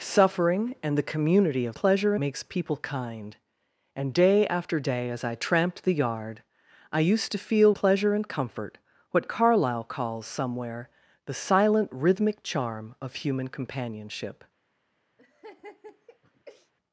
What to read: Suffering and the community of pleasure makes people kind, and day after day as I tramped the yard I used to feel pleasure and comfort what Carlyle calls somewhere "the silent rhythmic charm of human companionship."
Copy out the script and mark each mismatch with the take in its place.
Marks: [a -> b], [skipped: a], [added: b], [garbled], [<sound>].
Suffering and the community of pleasure makes people kind, and day after day as I tramped the yard I used to feel pleasure and comfort what Carlyle calls somewhere "the silent rhythmic charm of human companionship." [laugh]